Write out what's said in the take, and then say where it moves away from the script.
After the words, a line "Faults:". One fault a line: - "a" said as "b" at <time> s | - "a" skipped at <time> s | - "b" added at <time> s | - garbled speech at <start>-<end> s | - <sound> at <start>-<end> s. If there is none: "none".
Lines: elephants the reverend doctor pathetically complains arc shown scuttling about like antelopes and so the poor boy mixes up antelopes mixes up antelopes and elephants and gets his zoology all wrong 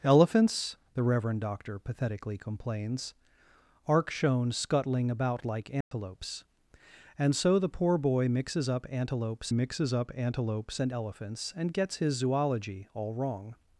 elephants the reverend doctor pathetically complains arc shown scuttling about like antelopes and so the poor boy mixes up antelopes mixes up antelopes and elephants and gets his zoology all wrong
Faults:
- dropout at 5.8-5.9 s